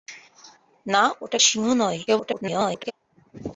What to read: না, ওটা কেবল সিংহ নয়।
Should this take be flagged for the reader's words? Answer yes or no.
yes